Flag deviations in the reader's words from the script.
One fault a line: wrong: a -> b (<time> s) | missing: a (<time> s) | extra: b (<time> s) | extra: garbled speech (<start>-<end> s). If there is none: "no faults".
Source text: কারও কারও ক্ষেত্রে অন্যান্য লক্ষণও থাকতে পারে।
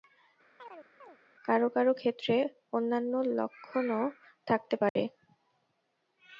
no faults